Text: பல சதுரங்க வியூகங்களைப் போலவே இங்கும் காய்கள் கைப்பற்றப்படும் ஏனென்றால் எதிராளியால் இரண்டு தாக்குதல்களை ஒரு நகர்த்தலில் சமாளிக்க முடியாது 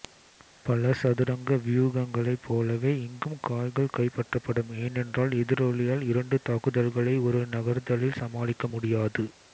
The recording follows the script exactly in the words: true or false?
true